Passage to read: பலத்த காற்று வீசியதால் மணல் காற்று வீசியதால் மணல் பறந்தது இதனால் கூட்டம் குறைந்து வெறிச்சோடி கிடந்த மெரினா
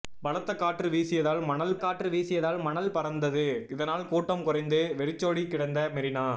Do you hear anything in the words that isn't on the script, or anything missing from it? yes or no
no